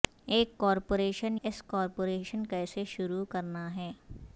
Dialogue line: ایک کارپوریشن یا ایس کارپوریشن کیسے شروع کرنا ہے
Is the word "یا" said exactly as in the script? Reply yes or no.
no